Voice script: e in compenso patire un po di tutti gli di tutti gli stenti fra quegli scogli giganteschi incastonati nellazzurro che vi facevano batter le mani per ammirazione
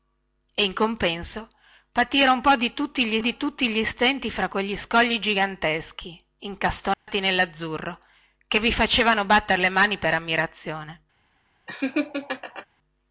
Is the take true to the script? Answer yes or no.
yes